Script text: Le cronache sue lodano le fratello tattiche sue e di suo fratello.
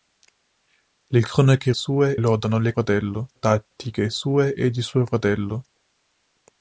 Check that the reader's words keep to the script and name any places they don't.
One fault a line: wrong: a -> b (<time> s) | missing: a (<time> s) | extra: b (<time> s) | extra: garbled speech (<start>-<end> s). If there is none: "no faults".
no faults